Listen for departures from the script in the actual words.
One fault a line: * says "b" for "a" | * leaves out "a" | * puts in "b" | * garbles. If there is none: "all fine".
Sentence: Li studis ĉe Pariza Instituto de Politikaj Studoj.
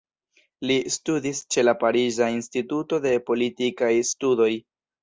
* puts in "la"